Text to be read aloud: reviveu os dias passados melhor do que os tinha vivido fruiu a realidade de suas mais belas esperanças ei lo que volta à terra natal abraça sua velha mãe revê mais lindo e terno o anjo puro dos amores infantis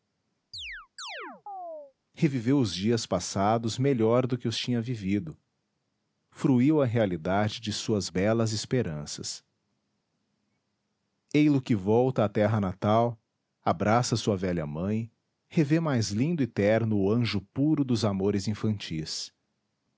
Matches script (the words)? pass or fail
fail